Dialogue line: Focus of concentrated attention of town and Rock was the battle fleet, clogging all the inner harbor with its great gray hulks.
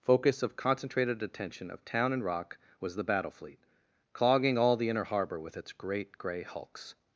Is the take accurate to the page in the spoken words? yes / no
yes